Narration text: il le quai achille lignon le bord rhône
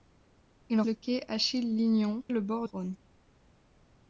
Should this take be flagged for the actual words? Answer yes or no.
no